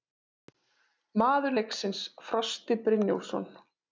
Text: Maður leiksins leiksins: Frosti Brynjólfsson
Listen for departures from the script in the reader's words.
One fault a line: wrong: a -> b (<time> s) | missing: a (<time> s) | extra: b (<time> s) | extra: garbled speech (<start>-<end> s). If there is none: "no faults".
missing: leiksins (2.0 s)